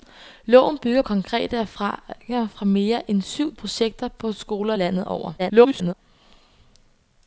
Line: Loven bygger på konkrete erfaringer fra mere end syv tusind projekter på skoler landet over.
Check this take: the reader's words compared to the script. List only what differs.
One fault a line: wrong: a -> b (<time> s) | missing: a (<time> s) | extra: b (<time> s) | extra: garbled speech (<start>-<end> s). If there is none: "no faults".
missing: på (1.0 s)
missing: tusind (3.5 s)
extra: garbled speech (5.4-5.9 s)